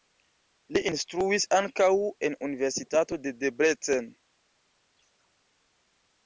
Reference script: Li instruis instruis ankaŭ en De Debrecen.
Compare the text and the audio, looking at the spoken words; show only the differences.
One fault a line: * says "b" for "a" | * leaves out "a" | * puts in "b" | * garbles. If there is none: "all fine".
* leaves out "instruis"
* puts in "Universitato"